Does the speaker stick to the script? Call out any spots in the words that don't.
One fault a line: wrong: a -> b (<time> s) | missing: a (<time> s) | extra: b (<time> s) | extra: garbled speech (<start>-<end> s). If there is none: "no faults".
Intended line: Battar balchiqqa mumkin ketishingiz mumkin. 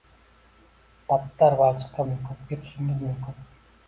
no faults